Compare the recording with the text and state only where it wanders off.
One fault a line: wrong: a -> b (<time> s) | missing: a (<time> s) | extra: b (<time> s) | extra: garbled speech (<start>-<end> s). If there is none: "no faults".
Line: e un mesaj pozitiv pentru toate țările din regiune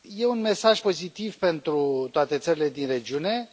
no faults